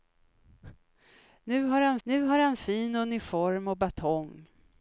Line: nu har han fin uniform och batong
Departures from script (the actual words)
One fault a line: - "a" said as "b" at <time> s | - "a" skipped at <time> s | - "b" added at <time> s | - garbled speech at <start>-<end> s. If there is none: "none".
- "nu har han" added at 2.0 s